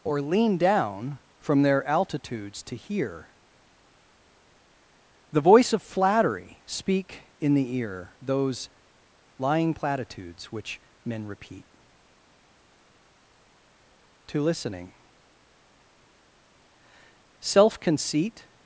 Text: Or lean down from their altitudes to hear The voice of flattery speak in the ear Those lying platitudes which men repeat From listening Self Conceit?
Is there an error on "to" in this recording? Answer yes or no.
no